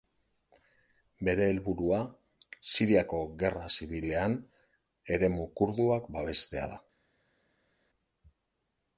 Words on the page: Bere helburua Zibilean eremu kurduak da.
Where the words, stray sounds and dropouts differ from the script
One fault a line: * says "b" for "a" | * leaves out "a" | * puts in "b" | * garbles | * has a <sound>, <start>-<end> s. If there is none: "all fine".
* puts in "Siriako Gerra"
* puts in "babestea"